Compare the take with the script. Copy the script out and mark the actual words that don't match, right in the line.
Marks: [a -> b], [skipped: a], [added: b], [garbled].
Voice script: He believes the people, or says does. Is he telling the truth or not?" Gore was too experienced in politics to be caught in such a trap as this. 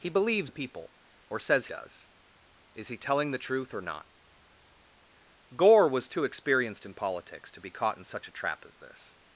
He believes the people, or says does. Is he telling the truth or not?" Gore was too experienced in politics to be caught in such a trap as this.